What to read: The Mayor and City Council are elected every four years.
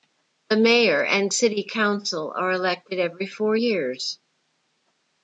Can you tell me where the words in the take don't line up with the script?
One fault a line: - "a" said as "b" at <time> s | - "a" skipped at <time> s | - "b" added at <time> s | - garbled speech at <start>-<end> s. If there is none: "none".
none